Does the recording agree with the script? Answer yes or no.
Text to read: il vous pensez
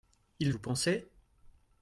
yes